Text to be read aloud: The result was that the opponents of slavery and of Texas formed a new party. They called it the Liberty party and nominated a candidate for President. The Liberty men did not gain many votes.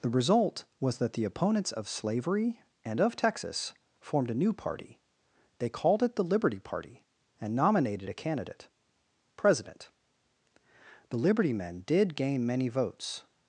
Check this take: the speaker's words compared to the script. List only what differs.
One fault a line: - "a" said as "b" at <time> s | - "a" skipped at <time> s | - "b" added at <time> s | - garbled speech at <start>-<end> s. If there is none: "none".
- "for" skipped at 8.7 s
- "not" skipped at 12.2 s